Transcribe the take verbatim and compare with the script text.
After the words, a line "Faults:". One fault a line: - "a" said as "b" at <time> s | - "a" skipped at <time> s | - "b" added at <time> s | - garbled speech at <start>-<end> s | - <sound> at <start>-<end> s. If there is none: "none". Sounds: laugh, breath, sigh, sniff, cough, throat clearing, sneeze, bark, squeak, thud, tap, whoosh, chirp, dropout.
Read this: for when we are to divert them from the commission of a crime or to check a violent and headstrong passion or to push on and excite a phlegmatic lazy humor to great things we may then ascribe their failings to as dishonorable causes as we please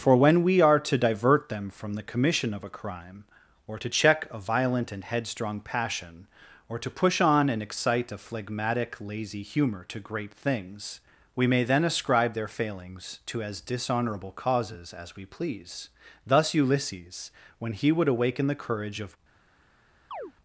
for when we are to divert them from the commission of a crime or to check a violent and headstrong passion or to push on and excite a phlegmatic lazy humor to great things we may then ascribe their failings to as dishonorable causes as we please thus ulysses when he would awaken the courage of
Faults:
- "thus ulysses when he would awaken the courage of" added at 16.2 s
- chirp at 20.1-20.3 s